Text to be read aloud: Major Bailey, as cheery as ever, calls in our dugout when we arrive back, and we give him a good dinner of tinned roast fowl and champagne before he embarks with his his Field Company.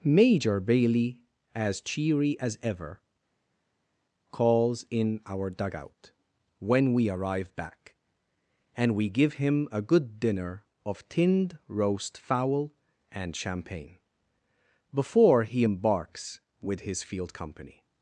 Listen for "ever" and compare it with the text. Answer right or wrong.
right